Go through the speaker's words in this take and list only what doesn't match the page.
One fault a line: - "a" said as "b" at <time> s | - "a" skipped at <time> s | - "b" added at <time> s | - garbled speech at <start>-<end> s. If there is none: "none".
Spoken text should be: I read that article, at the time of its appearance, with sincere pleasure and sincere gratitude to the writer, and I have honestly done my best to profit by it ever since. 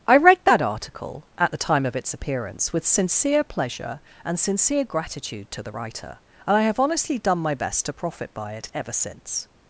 none